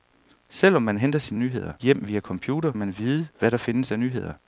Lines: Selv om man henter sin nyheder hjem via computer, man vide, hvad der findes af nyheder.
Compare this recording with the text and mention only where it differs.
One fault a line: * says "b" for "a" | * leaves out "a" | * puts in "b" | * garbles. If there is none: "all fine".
all fine